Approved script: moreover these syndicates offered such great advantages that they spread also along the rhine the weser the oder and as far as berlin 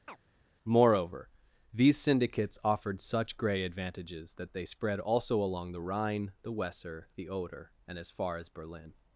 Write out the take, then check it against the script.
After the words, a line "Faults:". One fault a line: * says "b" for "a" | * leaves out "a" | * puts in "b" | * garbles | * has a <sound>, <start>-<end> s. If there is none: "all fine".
moreover these syndicates offered such grey advantages that they spread also along the rhine the weser the oder and as far as berlin
Faults:
* has a chirp, 0.1-0.2 s
* says "grey" for "great"